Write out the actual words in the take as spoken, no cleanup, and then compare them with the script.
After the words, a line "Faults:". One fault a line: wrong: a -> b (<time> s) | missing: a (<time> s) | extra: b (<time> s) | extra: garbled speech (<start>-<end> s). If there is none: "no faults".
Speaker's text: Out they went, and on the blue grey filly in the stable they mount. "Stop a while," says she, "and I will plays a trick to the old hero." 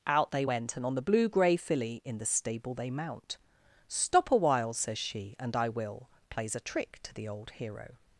Out they went, and on the blue grey filly in the stable they mount. "Stop a while," says she, "and I will plays a trick to the old hero."
Faults:
no faults